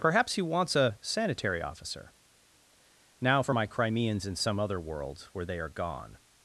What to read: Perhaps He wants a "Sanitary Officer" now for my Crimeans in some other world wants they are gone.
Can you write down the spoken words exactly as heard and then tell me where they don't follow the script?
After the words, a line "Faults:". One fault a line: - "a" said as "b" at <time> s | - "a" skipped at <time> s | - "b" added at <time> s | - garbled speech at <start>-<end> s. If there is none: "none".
Perhaps He wants a "Sanitary Officer" now for my Crimeans in some other world where they are gone.
Faults:
- "wants" said as "where" at 5.3 s